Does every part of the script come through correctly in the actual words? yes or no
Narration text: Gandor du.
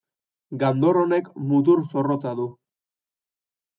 no